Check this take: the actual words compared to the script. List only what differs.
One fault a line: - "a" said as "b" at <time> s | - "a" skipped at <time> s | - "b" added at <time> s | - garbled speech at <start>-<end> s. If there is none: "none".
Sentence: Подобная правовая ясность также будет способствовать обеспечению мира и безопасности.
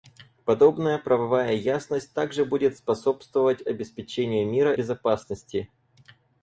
- "и" skipped at 4.7 s